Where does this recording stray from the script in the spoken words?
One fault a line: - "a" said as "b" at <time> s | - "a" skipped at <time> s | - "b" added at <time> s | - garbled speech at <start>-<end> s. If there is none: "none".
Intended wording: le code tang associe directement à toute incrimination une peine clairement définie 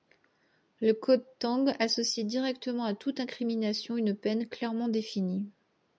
none